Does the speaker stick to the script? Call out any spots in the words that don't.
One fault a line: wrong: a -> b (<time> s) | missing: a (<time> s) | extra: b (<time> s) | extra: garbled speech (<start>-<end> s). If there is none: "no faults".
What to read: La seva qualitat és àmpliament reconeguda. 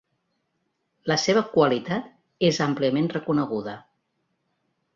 no faults